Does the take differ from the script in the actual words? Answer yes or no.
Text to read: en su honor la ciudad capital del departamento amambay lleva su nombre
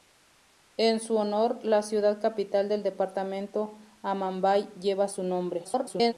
yes